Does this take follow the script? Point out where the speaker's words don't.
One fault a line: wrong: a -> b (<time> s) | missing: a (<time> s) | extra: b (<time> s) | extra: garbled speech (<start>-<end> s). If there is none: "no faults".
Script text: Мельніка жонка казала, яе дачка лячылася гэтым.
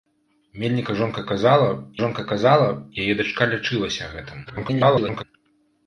extra: жонка казала (2.0 s)
extra: garbled speech (4.5-5.2 s)